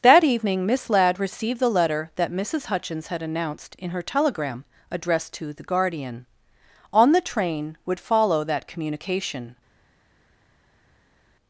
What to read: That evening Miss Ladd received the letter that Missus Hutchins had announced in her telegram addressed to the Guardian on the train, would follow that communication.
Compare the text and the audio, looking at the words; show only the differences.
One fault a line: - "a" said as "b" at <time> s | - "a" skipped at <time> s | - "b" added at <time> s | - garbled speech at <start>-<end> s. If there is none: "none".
none